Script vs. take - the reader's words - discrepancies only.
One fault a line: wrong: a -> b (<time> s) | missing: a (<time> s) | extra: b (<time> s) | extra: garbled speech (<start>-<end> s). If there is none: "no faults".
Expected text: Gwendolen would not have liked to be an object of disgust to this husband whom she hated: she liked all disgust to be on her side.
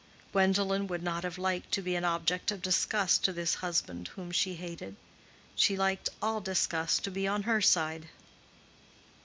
no faults